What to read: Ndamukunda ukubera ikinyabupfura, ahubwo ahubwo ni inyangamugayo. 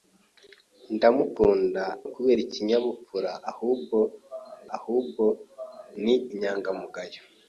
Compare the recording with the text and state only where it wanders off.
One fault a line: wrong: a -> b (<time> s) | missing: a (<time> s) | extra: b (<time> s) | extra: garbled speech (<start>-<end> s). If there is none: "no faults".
no faults